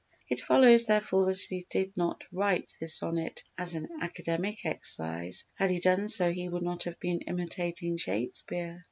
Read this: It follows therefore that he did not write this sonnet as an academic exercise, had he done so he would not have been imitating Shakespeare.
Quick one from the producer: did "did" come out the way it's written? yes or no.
yes